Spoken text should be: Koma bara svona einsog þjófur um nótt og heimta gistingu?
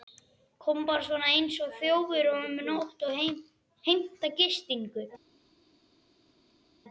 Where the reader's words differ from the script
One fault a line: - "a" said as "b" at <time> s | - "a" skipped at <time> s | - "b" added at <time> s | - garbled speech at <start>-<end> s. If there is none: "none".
none